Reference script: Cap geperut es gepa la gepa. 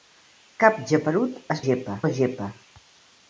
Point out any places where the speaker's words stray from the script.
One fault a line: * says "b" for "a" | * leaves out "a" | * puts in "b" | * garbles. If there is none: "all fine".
all fine